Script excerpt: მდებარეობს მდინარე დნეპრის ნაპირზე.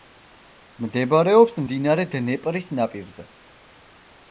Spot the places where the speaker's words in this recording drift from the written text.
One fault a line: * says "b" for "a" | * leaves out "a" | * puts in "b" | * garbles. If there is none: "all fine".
all fine